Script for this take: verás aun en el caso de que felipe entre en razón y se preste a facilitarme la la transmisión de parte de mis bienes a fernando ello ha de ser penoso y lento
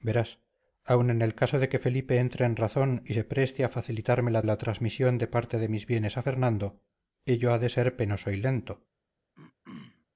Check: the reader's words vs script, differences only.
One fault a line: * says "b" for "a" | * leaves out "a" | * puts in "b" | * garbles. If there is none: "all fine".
all fine